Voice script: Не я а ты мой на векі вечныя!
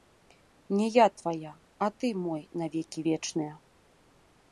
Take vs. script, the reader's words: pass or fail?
fail